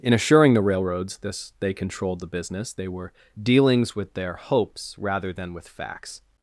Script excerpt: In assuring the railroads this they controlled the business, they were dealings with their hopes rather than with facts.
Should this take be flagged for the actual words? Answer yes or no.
no